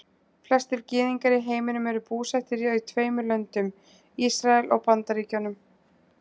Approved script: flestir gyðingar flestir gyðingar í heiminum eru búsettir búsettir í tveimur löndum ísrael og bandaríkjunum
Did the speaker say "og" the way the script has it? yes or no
yes